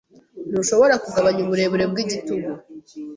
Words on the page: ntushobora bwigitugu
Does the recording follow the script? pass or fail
fail